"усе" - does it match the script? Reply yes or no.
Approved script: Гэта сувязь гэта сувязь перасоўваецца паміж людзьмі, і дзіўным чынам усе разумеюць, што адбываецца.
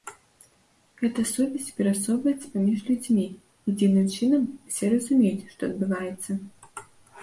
yes